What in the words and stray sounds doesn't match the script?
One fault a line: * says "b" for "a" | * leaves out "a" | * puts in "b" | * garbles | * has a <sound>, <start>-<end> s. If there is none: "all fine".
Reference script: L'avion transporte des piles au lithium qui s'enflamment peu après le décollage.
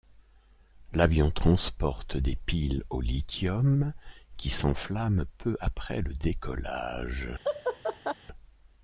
* has a laugh, 7.4-8.1 s